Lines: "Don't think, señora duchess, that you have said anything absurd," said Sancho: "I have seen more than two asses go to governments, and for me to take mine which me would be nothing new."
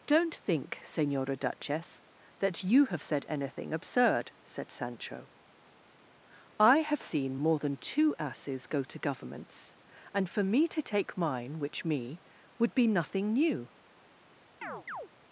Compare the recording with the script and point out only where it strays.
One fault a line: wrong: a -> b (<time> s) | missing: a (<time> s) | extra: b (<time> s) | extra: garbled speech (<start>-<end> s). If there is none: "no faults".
no faults